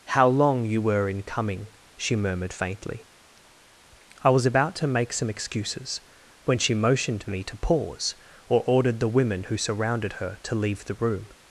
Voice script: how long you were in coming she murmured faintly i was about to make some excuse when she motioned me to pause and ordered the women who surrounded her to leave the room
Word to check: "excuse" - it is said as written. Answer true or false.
false